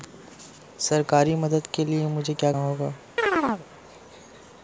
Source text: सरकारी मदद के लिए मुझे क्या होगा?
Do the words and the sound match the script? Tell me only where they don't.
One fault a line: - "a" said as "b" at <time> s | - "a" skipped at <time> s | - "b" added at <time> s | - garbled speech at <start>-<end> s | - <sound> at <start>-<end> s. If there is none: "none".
- chirp at 3.2-3.7 s